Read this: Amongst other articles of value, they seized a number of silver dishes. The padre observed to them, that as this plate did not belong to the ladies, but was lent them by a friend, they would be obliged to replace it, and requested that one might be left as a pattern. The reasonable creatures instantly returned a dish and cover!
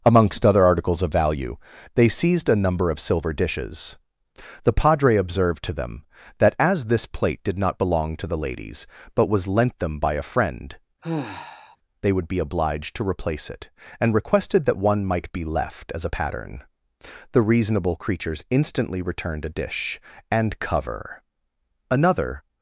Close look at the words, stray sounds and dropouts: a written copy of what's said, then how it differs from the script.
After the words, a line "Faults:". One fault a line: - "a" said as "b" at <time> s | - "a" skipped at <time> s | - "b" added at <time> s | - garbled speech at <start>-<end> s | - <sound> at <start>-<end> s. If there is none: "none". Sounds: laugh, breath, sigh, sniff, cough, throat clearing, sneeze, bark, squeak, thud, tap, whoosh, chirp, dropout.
Amongst other articles of value, they seized a number of silver dishes. The padre observed to them, that as this plate did not belong to the ladies, but was lent them by a friend, they would be obliged to replace it, and requested that one might be left as a pattern. The reasonable creatures instantly returned a dish and cover! Another
Faults:
- sigh at 11.0-11.8 s
- "Another" added at 21.9 s